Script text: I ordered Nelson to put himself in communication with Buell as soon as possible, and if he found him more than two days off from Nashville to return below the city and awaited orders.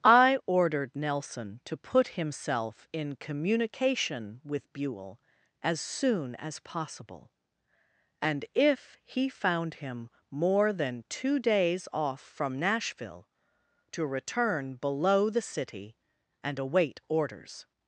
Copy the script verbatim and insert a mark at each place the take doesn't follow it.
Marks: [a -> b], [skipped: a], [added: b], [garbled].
I ordered Nelson to put himself in communication with Buell as soon as possible, and if he found him more than two days off from Nashville to return below the city and [awaited -> await] orders.